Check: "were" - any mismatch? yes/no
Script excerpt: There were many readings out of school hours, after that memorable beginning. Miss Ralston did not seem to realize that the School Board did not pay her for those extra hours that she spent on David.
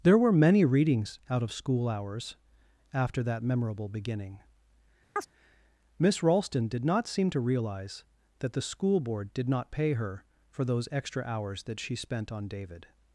no